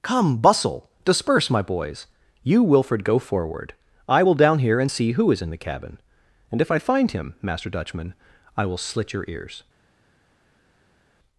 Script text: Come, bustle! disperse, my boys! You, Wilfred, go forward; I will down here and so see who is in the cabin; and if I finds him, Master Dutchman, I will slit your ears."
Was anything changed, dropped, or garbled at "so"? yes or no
yes